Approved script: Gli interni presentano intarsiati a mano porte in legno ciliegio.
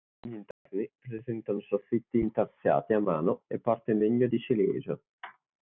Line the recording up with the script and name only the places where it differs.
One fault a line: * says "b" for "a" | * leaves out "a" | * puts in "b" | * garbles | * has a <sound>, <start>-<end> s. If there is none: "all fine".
* has a dropout, 0.5-0.7 s
* puts in "soffitti"
* puts in "e"
* puts in "di"